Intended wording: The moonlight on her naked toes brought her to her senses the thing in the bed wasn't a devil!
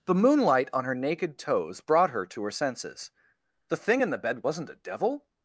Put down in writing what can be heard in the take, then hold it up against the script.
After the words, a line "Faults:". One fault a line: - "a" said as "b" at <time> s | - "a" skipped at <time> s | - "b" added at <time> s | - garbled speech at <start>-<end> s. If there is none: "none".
The moonlight on her naked toes brought her to her senses the thing in the bed wasn't a devil!
Faults:
none